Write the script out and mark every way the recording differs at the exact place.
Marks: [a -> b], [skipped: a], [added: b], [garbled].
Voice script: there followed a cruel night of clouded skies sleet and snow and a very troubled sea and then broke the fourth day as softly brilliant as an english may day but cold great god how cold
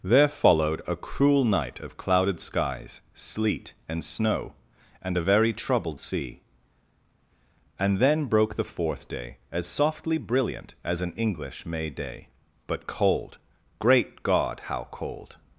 there followed a cruel night of clouded skies sleet and snow and a very troubled sea and then broke the fourth day as softly brilliant as an english may day but cold great god how cold